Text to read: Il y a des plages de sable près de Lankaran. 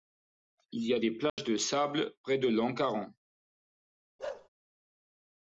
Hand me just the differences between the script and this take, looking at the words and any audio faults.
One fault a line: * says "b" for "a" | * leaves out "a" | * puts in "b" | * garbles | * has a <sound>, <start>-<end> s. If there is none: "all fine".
* has a dropout, 1.3-1.4 s
* has a bark, 4.2-4.5 s